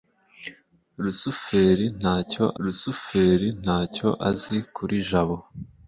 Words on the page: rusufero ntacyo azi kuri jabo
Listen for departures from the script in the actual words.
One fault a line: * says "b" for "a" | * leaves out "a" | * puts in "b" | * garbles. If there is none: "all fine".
* puts in "rusufero ntacyo"